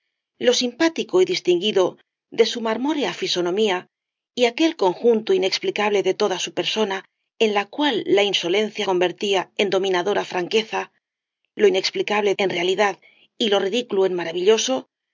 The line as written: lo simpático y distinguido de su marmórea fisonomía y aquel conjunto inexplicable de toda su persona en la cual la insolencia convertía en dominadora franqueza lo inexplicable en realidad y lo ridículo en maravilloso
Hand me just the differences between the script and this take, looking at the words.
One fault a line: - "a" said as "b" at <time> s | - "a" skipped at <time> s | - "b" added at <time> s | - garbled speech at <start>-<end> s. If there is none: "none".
none